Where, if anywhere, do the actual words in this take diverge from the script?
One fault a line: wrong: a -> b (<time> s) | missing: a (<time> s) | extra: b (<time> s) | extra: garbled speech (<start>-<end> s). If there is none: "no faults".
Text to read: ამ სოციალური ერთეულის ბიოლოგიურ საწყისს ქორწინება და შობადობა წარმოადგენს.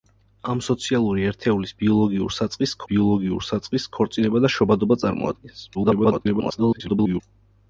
extra: ბიოლოგიურ საწყისს (2.9 s)
extra: garbled speech (5.7-7.2 s)